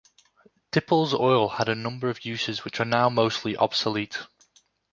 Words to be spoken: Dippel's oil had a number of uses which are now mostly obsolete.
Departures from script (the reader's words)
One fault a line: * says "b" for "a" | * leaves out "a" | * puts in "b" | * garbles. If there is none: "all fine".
all fine